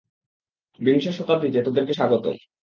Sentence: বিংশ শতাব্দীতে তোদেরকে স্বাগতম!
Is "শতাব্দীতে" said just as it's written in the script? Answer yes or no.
yes